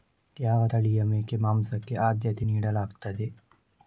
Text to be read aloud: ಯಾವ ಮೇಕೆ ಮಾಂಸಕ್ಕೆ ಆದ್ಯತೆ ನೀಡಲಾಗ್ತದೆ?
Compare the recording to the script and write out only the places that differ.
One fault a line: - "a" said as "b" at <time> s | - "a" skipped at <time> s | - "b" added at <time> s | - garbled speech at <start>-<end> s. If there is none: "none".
- "ತಳಿಯ" added at 0.6 s